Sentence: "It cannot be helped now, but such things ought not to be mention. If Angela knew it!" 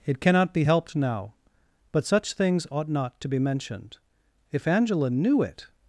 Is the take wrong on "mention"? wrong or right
wrong